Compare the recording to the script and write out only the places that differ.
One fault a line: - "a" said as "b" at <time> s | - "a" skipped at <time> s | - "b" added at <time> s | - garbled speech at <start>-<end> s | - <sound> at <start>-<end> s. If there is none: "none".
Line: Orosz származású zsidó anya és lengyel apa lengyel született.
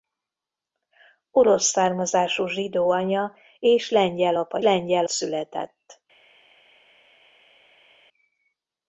none